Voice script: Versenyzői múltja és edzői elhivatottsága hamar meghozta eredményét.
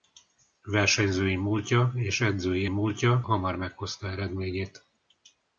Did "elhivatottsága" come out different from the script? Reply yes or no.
yes